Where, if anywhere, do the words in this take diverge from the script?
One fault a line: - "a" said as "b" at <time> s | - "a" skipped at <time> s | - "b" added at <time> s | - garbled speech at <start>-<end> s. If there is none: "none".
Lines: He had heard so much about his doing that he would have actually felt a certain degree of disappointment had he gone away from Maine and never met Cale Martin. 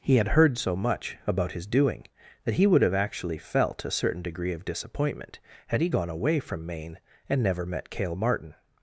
none